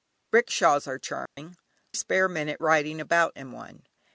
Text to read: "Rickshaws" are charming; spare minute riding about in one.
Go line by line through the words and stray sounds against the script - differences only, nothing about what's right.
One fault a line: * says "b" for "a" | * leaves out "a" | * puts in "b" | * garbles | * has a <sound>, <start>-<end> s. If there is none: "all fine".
* has a dropout, 1.3-1.4 s